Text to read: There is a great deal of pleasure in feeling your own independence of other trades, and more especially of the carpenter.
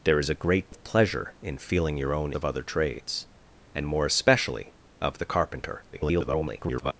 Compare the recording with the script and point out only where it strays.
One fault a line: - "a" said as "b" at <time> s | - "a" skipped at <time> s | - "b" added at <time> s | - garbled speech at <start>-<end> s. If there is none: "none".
- "deal" skipped at 0.7 s
- "independence" skipped at 2.3 s
- garbled speech at 5.9-6.9 s